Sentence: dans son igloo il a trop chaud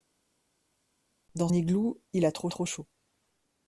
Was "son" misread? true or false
true